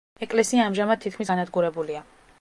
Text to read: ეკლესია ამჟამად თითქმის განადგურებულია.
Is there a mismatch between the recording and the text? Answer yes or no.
no